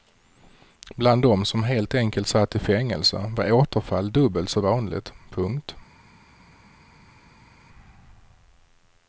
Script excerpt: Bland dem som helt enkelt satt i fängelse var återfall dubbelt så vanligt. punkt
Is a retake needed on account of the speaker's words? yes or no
no